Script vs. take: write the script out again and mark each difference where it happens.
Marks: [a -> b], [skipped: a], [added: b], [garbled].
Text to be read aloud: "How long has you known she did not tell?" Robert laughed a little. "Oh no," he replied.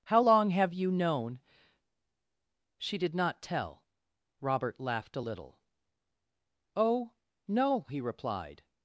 "How long [has -> have] you known she did not tell?" Robert laughed a little. "Oh no," he replied.